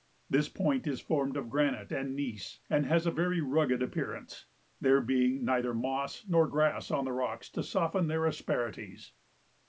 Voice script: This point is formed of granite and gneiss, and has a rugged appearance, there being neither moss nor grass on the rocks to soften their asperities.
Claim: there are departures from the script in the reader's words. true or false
true